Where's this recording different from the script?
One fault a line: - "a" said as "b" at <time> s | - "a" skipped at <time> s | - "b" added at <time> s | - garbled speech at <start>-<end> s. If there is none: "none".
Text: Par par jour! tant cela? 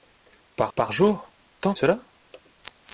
none